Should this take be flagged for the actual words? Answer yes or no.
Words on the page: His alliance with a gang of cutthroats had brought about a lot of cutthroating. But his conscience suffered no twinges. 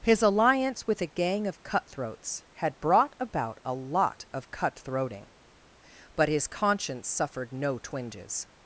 no